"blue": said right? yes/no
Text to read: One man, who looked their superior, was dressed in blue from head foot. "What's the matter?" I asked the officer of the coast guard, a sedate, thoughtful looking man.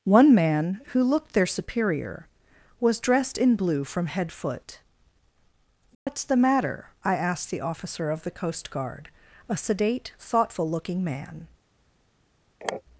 yes